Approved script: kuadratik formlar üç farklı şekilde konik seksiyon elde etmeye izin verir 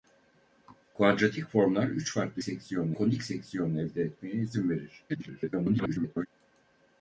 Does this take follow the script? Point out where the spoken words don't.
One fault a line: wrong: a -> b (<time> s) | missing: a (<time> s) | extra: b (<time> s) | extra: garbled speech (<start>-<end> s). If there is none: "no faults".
wrong: şekilde -> seksiyon (2.4 s)
extra: garbled speech (5.1-6.3 s)